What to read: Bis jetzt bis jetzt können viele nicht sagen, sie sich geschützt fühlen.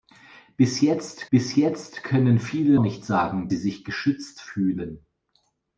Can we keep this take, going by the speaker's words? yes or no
yes